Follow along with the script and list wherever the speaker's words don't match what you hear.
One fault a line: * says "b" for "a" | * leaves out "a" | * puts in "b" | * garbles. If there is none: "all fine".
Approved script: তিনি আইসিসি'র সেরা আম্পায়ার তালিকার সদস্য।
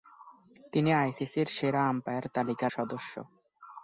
all fine